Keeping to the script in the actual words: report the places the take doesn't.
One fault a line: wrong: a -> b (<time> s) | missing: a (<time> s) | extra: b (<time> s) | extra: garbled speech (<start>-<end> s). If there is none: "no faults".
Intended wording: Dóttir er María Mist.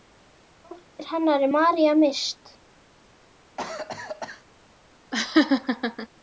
extra: hennar (1.1 s)